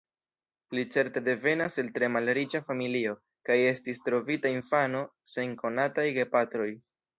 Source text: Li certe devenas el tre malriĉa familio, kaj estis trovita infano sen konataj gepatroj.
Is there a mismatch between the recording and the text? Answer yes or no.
no